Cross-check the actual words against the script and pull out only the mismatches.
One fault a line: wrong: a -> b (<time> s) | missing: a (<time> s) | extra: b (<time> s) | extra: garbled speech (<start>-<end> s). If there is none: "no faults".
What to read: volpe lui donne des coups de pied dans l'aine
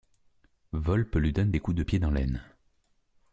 no faults